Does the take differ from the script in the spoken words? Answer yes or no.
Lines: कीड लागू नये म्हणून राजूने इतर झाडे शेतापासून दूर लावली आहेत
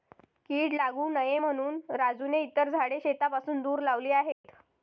no